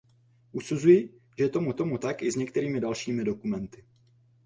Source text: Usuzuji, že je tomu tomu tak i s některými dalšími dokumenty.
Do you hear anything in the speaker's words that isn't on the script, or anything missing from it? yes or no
no